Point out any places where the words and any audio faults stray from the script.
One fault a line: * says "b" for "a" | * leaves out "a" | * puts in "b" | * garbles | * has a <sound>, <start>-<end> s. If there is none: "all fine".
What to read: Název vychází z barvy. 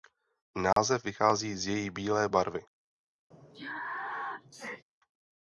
* has a dropout, 0.7-0.8 s
* puts in "její bílé"
* has a sneeze, 3.3-4.8 s